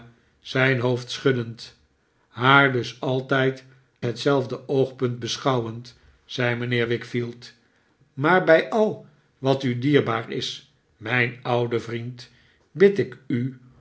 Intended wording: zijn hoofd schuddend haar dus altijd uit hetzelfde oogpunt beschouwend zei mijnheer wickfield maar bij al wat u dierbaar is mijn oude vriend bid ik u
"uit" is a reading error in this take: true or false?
true